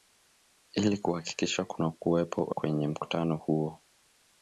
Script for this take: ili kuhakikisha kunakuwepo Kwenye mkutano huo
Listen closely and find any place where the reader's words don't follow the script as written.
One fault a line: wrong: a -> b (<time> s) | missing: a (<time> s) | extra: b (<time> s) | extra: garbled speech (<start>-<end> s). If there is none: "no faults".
no faults